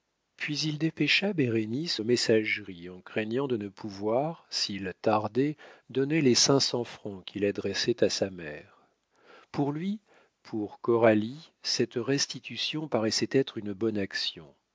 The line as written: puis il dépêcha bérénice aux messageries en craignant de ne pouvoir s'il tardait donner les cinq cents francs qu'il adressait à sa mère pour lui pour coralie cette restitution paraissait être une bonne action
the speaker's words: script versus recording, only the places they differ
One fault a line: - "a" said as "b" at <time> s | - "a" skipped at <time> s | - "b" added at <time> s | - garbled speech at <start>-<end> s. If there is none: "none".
none